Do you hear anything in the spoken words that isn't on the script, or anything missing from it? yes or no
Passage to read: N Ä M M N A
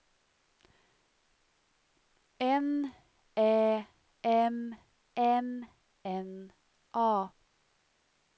no